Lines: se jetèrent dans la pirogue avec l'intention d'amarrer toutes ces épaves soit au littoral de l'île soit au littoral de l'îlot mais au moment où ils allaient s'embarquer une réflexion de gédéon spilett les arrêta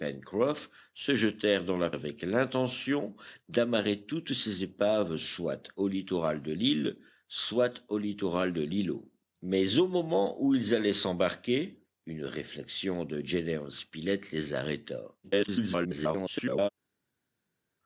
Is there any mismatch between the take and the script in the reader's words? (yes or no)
yes